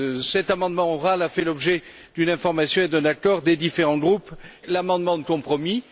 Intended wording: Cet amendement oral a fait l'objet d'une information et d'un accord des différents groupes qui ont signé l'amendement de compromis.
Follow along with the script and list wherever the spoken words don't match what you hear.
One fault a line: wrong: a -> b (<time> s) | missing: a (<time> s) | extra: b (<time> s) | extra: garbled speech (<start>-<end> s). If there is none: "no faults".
missing: qui ont signé (4.3 s)